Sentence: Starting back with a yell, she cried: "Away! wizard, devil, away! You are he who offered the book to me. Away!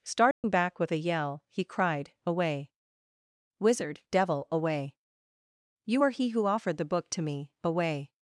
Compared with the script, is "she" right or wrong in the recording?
wrong